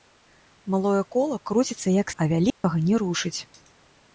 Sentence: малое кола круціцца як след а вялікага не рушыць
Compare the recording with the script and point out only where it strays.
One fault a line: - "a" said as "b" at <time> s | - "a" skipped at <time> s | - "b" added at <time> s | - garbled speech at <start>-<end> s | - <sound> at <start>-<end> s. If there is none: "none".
- "след" skipped at 2.1 s
- dropout at 2.5-2.6 s